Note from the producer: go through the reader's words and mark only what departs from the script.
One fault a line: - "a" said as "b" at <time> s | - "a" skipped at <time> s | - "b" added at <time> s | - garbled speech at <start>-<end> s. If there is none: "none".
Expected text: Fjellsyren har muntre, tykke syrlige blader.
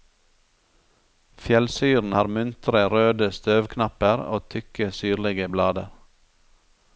- "røde støvknapper og" added at 2.9 s